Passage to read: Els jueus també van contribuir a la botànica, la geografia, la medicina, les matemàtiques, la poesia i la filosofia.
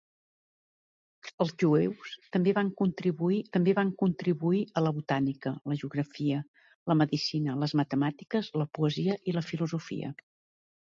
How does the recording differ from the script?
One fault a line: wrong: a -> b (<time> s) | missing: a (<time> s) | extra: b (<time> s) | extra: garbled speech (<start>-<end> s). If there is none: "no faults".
extra: també van contribuir (3.6 s)